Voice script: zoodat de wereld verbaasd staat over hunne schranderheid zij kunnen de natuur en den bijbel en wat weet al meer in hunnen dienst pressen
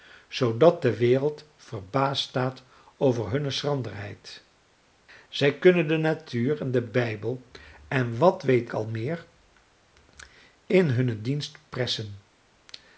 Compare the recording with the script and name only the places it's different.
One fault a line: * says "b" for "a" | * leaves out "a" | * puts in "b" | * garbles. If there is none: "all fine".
all fine